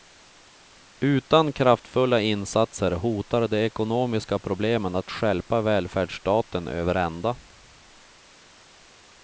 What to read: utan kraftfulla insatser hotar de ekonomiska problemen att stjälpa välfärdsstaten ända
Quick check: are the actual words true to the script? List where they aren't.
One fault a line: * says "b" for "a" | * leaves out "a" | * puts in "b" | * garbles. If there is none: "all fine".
* puts in "över"